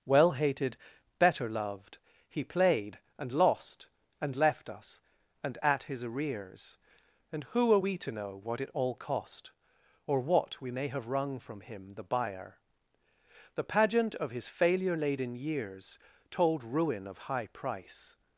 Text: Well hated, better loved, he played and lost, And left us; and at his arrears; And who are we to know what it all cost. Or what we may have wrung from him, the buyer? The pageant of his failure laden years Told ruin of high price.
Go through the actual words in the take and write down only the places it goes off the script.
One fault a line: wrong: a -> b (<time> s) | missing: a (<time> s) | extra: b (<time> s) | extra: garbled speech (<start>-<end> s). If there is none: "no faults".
no faults